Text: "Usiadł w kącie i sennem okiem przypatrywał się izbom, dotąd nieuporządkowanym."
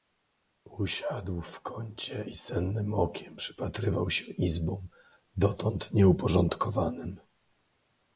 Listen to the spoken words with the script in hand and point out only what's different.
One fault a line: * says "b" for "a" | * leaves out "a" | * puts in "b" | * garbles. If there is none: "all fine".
all fine